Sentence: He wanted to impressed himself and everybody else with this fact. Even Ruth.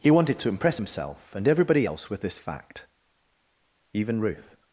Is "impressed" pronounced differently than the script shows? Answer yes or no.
yes